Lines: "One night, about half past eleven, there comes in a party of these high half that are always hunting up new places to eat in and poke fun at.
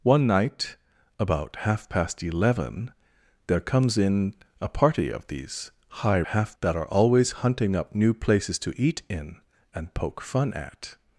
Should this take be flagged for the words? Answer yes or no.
no